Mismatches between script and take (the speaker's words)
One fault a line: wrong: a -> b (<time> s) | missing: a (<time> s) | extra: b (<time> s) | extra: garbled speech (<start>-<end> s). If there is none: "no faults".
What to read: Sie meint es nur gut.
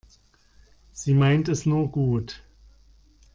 no faults